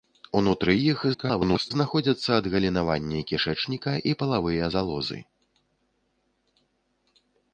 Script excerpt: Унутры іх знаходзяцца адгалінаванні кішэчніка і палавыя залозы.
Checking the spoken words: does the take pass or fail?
fail